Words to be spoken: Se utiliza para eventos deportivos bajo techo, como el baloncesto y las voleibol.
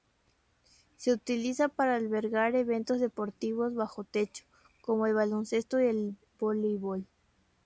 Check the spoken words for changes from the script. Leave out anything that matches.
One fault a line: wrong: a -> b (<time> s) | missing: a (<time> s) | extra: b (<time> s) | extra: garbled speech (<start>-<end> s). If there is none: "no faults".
extra: albergar (1.9 s)
wrong: las -> el (5.8 s)